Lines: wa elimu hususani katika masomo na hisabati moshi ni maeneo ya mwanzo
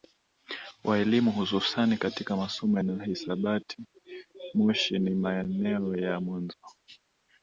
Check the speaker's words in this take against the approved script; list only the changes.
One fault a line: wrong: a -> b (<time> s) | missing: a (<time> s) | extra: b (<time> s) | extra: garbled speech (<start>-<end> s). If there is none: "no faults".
no faults